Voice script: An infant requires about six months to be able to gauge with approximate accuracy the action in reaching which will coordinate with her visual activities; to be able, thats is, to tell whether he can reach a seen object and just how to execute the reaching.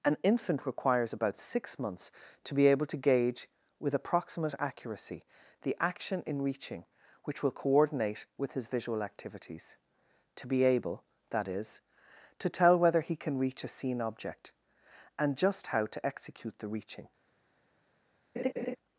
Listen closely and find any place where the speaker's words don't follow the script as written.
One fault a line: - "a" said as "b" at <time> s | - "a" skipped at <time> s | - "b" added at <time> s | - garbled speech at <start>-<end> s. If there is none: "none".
- "her" said as "his" at 8.5 s
- "thats" said as "that" at 11.3 s